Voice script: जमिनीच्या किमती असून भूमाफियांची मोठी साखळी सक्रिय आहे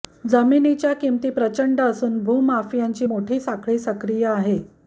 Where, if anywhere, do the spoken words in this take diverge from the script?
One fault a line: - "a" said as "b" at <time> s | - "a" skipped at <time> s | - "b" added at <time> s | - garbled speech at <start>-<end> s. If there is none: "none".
- "प्रचंड" added at 1.3 s